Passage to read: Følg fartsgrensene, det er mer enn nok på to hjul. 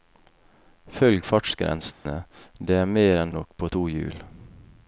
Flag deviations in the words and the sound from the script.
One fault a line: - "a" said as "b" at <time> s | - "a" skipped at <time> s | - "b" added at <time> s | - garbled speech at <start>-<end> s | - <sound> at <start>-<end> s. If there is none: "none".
- dropout at 1.9-2.1 s